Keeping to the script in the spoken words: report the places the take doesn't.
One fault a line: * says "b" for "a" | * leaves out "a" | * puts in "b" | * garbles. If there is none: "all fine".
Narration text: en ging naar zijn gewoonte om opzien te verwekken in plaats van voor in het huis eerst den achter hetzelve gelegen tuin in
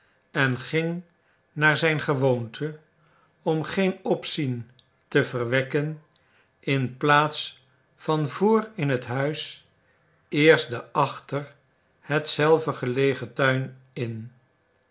* puts in "geen"